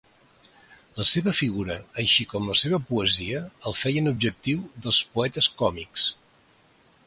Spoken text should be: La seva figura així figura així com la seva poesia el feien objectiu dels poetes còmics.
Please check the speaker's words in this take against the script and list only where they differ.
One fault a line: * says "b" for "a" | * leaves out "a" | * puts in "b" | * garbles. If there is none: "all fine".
* leaves out "figura així"